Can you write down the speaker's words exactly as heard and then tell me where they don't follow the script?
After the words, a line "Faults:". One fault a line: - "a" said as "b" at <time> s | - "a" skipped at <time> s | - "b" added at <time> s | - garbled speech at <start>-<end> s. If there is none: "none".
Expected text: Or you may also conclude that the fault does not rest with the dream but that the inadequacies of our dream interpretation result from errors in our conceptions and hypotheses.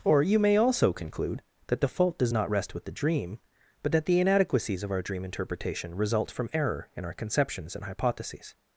Or you may also conclude that the fault does not rest with the dream but that the inadequacies of our dream interpretation result from error in our conceptions and hypotheses.
Faults:
- "errors" said as "error" at 6.5 s